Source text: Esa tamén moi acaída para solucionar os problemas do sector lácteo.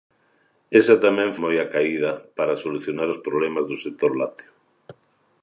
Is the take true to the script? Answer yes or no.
yes